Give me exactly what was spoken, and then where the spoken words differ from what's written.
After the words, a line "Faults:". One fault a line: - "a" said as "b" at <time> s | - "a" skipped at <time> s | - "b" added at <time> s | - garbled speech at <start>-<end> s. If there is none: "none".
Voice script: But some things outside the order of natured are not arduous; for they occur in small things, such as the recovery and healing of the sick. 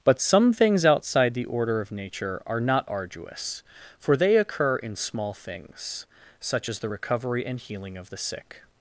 But some things outside the order of nature are not arduous; for they occur in small things, such as the recovery and healing of the sick.
Faults:
- "natured" said as "nature" at 1.9 s